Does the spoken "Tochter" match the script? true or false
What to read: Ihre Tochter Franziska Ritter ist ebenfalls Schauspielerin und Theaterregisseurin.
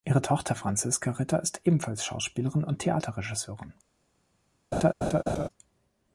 true